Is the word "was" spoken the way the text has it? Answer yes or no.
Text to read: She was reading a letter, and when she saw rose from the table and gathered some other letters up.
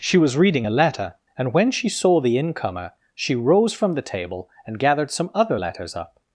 yes